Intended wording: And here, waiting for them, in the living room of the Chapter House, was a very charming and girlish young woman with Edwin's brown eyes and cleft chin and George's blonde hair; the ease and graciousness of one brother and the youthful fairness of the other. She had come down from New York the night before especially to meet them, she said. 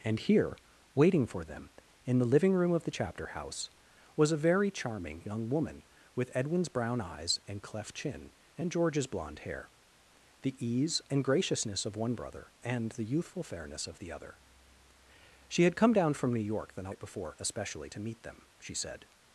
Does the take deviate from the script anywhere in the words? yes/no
yes